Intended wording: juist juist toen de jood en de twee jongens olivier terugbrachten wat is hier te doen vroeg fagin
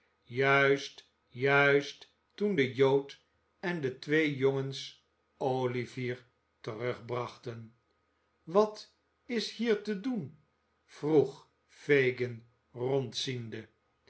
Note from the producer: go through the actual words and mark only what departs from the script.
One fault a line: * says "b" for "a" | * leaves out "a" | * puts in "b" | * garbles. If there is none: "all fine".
all fine